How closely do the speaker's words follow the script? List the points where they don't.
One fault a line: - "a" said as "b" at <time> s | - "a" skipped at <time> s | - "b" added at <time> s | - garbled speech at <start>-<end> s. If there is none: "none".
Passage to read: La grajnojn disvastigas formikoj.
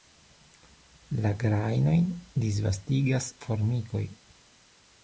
none